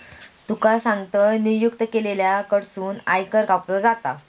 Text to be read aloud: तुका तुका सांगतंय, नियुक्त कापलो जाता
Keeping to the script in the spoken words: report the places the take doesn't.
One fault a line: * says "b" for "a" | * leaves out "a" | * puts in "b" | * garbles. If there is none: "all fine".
* leaves out "तुका"
* puts in "केलेल्या कडसून आयकर"